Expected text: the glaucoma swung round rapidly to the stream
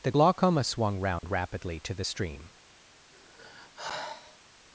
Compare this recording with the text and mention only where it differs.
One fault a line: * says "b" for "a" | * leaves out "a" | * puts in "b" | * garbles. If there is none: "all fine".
all fine